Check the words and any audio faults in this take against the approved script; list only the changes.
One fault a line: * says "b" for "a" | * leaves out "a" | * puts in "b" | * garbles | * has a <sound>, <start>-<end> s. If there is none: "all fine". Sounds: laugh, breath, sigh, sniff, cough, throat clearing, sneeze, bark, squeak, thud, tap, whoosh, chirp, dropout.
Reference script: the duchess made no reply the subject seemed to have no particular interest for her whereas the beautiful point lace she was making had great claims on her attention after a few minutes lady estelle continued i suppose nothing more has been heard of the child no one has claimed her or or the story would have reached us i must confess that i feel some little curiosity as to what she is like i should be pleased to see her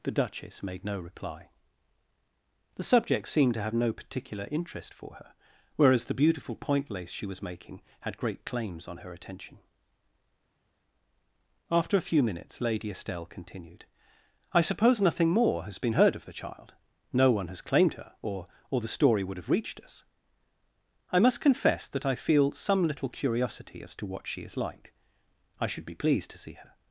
all fine